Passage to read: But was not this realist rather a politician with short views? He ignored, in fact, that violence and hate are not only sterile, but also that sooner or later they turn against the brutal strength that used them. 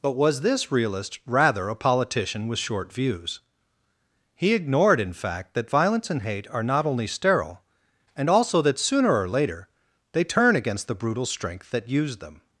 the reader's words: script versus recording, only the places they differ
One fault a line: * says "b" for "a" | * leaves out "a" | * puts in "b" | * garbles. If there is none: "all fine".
* leaves out "not"
* says "and" for "but"